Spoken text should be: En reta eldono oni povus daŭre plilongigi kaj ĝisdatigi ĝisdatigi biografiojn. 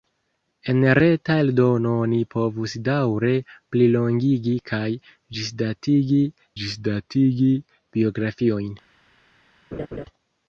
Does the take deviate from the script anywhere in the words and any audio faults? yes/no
yes